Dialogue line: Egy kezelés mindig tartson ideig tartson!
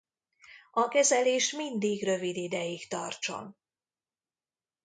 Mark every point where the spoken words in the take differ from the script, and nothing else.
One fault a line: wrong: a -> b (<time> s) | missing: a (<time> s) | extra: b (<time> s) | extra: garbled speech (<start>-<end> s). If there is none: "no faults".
wrong: Egy -> A (0.7 s)
wrong: tartson -> rövid (2.0 s)